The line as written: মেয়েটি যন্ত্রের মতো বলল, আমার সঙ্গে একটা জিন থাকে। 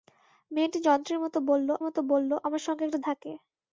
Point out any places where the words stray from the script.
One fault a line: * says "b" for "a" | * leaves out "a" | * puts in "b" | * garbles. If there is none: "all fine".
* puts in "মতো বলল"
* leaves out "জিন"